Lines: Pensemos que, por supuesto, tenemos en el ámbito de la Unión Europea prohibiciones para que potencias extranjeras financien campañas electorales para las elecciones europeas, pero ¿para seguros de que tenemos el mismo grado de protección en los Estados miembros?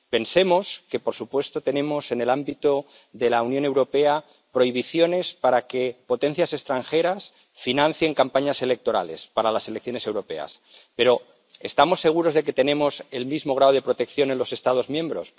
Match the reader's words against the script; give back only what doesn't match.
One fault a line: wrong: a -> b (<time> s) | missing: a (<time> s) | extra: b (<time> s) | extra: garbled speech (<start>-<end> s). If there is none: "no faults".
wrong: para -> estamos (11.6 s)